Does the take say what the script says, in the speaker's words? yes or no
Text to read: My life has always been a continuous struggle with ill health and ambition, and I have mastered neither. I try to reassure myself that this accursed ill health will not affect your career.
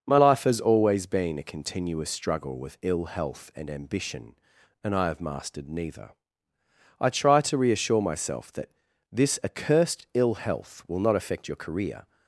yes